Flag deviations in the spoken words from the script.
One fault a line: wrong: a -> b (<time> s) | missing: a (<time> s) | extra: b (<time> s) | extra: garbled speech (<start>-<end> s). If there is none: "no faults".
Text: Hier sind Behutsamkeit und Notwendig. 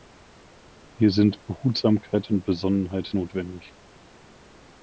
extra: Besonnenheit (2.4 s)